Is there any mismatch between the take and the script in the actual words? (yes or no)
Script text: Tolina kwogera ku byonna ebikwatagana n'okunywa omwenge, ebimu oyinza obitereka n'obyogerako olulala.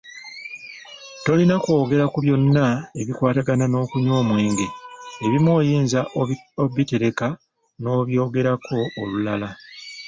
no